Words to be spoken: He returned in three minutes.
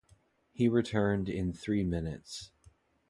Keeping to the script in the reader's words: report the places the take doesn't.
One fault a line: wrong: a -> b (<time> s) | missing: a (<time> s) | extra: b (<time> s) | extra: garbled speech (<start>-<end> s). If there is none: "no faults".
no faults